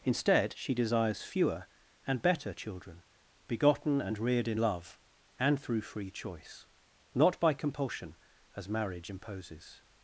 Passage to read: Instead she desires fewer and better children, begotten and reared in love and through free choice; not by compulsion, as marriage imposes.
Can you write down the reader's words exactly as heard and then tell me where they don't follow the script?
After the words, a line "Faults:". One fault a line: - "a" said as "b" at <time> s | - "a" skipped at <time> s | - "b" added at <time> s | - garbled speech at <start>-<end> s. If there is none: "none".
Instead she desires fewer and better children, begotten and reared in love and through free choice; not by compulsion, as marriage imposes.
Faults:
none